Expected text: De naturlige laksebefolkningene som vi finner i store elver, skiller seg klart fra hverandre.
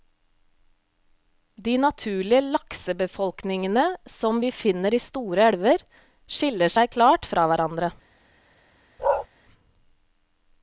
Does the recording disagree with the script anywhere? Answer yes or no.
no